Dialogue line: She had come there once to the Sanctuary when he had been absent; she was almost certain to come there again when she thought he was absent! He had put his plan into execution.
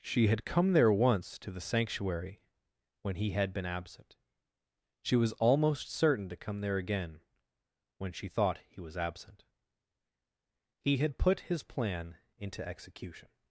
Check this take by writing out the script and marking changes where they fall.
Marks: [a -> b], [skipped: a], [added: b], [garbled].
She had come there once to the Sanctuary when he had been absent; she was almost certain to come there again when she thought he was absent! He had put his plan into execution.